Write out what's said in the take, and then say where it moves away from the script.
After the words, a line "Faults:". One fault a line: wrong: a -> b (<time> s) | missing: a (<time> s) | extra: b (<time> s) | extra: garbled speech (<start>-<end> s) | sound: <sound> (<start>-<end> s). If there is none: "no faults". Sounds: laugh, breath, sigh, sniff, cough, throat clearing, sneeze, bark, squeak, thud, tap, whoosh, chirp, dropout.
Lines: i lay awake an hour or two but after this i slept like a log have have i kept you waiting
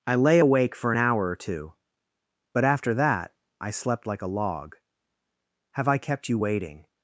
i lay awake for an hour or two but after that i slept like a log have i kept you waiting
Faults:
extra: for (0.8 s)
wrong: this -> that (2.9 s)
missing: have (5.9 s)